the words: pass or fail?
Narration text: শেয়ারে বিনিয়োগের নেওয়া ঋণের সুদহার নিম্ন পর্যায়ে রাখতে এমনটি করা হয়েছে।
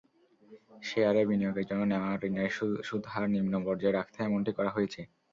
fail